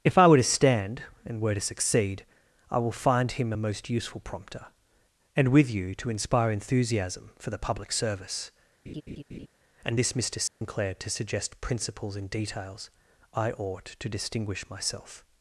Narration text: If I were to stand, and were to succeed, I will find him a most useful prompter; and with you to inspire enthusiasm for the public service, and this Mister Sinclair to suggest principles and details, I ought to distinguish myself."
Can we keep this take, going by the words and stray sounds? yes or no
no